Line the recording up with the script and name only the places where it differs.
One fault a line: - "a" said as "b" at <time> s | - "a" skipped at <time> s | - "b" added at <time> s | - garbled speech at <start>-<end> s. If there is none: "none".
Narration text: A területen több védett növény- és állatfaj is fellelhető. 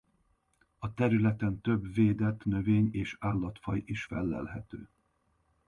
none